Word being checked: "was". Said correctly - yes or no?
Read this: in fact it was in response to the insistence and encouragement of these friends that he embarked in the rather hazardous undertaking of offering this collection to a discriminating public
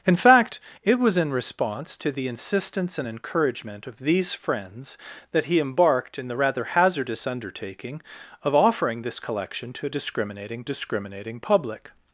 yes